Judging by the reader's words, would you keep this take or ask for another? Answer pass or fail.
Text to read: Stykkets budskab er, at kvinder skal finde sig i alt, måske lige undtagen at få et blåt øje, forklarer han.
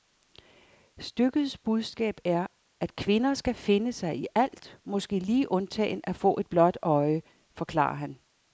pass